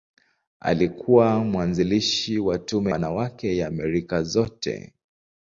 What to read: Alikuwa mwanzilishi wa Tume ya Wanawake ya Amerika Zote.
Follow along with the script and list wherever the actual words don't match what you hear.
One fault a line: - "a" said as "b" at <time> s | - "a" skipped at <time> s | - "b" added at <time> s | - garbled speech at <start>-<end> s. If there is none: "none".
- "ya" skipped at 2.9 s